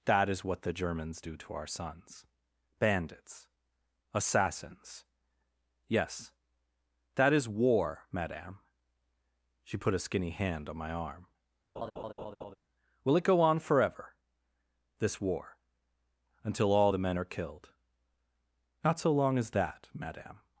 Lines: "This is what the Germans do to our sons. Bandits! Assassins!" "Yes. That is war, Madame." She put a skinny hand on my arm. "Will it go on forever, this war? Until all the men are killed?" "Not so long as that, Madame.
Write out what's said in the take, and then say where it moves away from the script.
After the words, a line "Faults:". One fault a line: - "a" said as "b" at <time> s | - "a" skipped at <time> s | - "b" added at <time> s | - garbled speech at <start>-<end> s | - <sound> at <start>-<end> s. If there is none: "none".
"That is what the Germans do to our sons. Bandits! Assassins!" "Yes. That is war, Madame." She put a skinny hand on my arm. "Will it go on forever, this war? Until all the men are killed?" "Not so long as that, Madame.
Faults:
- "This" said as "That" at 0.1 s
- laugh at 11.8-12.6 s